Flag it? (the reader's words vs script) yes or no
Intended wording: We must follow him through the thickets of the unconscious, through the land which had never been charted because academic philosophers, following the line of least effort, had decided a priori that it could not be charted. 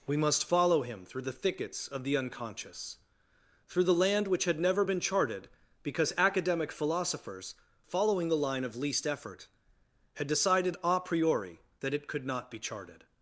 no